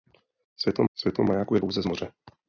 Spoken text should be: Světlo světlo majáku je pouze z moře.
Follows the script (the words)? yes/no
yes